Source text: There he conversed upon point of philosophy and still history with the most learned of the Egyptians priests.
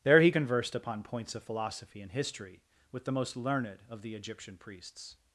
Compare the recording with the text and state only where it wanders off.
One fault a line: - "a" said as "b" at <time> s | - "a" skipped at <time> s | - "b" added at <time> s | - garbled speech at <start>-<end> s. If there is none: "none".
- "point" said as "points" at 1.0 s
- "still" skipped at 2.1 s
- "Egyptians" said as "Egyptian" at 4.1 s